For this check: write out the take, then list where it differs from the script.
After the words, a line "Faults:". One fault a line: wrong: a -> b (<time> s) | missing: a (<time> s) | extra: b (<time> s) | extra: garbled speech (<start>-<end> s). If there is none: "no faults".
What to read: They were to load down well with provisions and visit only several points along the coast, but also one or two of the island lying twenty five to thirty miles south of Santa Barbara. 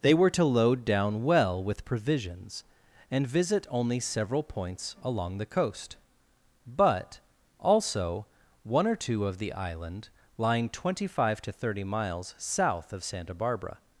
They were to load down well with provisions and visit only several points along the coast, but also one or two of the island lying twenty five to thirty miles south of Santa Barbara.
Faults:
no faults